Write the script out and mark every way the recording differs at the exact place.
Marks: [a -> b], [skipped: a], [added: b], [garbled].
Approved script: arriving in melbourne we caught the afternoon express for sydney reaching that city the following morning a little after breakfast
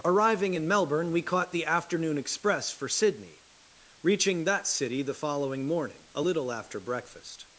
arriving in melbourne we caught the afternoon express for sydney reaching that city the following morning a little after breakfast